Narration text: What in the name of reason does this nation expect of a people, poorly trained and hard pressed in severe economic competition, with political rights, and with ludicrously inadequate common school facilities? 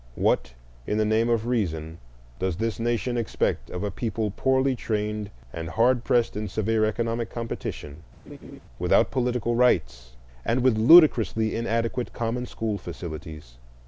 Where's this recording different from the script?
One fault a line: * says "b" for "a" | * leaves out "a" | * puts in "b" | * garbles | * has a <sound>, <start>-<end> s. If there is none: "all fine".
* has a laugh, 8.3-8.6 s
* says "without" for "with"